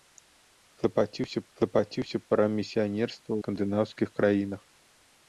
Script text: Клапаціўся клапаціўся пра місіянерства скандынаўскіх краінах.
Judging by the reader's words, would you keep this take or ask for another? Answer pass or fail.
pass